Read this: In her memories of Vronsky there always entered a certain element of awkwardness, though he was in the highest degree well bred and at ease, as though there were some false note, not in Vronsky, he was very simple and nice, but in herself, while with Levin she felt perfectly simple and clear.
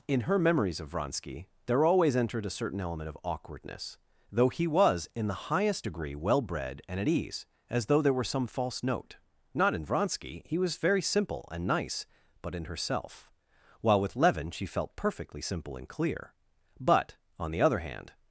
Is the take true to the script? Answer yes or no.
no